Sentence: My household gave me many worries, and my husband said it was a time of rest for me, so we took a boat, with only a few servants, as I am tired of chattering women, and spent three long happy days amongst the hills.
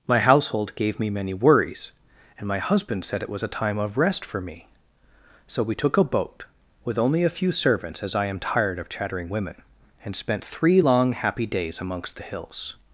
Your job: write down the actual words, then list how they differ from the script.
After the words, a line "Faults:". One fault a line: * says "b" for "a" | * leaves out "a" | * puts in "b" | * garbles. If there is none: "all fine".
My household gave me many worries, and my husband said it was a time of rest for me, so we took a boat, with only a few servants, as I am tired of chattering women, and spent three long happy days amongst the hills.
Faults:
all fine